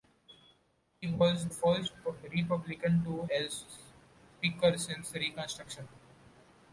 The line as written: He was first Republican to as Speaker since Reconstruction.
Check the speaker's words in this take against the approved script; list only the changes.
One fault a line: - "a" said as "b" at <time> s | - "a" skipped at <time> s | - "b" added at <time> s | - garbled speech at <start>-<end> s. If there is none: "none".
none